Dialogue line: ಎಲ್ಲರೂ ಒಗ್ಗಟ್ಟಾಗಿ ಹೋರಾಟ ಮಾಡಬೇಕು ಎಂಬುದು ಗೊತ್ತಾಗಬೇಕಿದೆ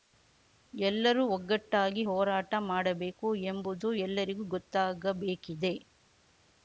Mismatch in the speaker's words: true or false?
true